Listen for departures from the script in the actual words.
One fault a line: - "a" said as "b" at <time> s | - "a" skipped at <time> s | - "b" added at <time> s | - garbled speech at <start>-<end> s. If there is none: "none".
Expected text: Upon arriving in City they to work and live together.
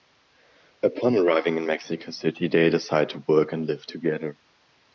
- "Mexico" added at 1.7 s
- "decide" added at 2.7 s